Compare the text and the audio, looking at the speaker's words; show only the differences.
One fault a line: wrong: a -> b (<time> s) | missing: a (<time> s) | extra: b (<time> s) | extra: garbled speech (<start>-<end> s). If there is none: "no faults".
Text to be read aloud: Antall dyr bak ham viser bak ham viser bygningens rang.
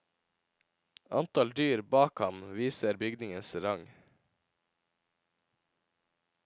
missing: bak ham viser (3.0 s)